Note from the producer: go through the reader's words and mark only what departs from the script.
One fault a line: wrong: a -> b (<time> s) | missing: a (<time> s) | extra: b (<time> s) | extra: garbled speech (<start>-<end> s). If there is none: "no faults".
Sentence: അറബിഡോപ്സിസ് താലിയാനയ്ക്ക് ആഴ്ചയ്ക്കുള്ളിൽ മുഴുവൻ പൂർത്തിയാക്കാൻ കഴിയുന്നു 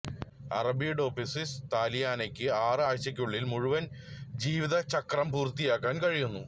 extra: ആറ് (2.6 s)
extra: ജീവിതചക്രം (4.4 s)